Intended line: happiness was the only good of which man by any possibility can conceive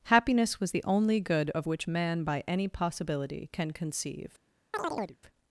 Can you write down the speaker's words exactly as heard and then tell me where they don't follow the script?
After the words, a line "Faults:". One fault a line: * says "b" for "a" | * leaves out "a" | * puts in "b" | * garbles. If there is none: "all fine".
happiness was the only good of which man by any possibility can conceive
Faults:
all fine